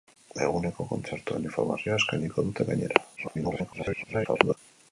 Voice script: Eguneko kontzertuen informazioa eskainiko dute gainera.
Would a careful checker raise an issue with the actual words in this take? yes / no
yes